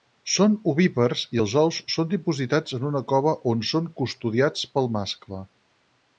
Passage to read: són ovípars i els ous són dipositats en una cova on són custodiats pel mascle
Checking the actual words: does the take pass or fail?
pass